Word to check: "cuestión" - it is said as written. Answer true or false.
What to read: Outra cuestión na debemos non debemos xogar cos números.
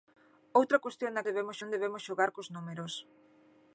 true